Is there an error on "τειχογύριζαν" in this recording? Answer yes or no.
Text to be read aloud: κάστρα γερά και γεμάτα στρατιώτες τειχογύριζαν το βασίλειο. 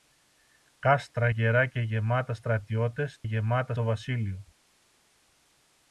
yes